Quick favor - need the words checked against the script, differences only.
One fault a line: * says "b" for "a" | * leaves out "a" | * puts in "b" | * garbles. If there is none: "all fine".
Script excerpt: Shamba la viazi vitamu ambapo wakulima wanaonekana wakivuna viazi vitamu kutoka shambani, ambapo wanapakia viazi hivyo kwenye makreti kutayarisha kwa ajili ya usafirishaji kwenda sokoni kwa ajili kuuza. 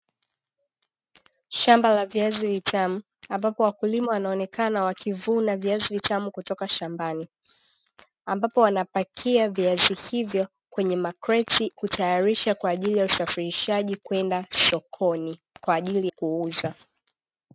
all fine